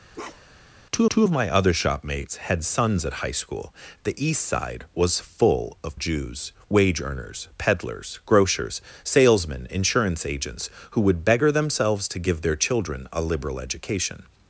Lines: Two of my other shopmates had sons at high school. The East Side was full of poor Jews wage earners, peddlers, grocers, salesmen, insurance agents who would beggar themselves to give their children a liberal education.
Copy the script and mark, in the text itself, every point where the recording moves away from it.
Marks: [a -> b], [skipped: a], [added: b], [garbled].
Two [added: two] of my other shopmates had sons at high school. The East Side was full of [skipped: poor] Jews wage earners, peddlers, grocers, salesmen, insurance agents who would beggar themselves to give their children a liberal education.